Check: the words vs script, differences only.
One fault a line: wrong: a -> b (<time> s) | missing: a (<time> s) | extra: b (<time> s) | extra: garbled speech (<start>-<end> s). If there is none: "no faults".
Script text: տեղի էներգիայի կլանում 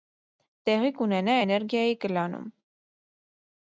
extra: կունենա (1.0 s)